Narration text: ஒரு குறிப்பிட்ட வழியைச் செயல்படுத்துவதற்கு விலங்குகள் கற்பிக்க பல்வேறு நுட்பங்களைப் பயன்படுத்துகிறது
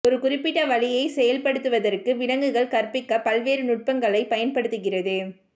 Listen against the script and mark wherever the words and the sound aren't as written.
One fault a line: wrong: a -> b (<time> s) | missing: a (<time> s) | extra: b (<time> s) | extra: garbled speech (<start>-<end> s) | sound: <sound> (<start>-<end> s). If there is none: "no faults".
no faults